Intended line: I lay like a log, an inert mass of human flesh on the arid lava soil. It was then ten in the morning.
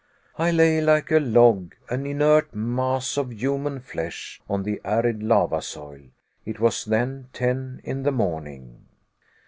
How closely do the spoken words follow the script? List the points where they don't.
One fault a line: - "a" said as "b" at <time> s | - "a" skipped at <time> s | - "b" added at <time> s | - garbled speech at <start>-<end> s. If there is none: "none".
none